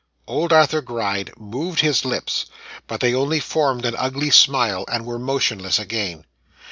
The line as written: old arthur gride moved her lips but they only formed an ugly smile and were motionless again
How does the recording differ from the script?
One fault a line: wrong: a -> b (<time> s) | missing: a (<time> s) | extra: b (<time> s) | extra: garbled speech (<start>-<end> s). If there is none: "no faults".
wrong: her -> his (1.8 s)